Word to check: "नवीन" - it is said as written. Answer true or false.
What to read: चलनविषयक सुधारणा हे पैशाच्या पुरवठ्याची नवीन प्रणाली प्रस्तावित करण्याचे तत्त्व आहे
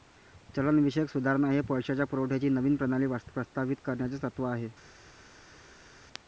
true